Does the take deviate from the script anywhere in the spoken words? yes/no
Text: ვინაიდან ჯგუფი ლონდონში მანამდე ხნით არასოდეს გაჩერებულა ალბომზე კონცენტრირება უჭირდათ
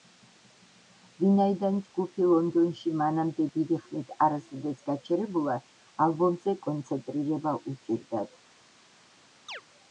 yes